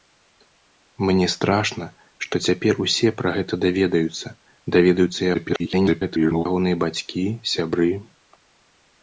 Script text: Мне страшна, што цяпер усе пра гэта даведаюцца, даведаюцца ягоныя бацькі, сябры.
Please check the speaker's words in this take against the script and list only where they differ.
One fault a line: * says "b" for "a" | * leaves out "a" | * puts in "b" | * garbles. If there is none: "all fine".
* garbles